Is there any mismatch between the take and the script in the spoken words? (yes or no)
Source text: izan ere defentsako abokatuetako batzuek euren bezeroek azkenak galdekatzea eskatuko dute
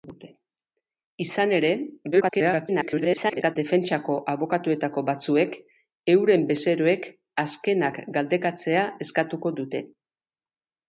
yes